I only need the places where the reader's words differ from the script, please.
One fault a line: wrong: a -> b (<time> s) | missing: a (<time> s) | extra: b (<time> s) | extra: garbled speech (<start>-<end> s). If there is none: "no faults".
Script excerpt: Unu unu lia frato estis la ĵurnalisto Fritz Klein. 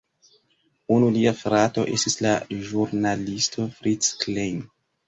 missing: unu (1.1 s)